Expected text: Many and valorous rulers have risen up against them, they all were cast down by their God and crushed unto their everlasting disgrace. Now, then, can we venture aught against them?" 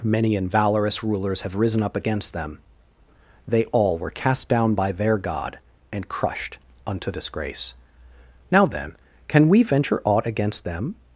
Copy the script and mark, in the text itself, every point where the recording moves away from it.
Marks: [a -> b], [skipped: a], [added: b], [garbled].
Many and valorous rulers have risen up against them, they all were cast down by their God and crushed unto [skipped: their everlasting] disgrace. Now, then, can we venture aught against them?"